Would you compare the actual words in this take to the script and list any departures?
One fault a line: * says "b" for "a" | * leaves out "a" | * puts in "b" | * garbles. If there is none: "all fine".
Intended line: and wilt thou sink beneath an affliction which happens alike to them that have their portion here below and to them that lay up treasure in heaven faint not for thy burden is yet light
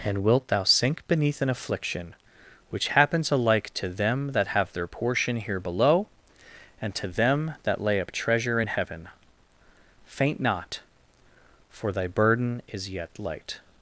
all fine